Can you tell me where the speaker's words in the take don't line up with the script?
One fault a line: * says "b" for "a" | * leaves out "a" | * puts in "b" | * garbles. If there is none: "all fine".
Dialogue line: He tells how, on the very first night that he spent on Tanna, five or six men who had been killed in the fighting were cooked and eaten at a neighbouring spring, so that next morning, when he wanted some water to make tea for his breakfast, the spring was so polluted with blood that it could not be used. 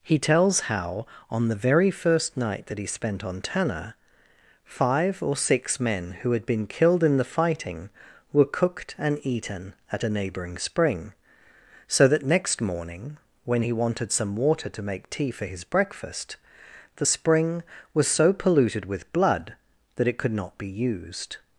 all fine